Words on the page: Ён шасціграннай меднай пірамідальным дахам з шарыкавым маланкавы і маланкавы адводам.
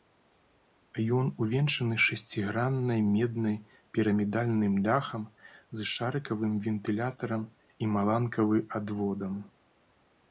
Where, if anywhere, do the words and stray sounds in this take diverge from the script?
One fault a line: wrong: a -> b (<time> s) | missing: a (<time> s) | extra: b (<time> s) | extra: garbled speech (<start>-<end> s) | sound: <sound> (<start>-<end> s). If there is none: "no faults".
extra: увенчаны (1.4 s)
wrong: маланкавы -> вентылятарам (6.7 s)